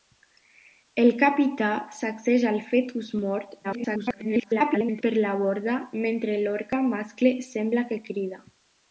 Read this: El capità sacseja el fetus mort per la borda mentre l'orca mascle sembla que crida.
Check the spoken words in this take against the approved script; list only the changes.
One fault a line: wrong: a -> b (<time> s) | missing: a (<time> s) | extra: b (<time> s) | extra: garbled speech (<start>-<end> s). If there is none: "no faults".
extra: garbled speech (3.6-5.0 s)